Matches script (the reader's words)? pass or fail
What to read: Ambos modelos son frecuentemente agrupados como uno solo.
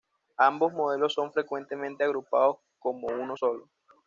pass